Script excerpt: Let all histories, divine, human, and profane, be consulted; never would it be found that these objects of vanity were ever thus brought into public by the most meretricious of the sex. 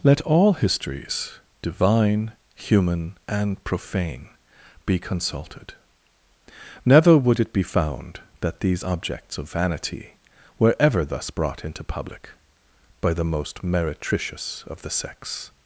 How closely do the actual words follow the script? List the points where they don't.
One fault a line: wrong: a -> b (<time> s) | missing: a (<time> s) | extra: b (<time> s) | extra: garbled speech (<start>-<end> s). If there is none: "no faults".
no faults